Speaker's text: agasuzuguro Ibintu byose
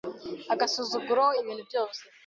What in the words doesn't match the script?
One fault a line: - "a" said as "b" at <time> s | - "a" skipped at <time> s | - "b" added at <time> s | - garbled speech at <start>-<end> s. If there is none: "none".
none